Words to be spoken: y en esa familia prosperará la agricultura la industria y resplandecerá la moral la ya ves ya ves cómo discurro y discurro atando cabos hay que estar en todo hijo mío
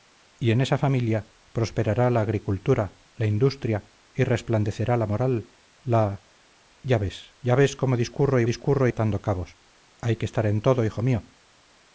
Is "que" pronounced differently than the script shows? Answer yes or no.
no